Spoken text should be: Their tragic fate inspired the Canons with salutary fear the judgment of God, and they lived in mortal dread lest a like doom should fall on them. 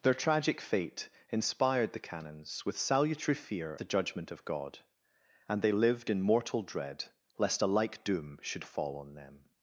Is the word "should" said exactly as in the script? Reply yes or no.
yes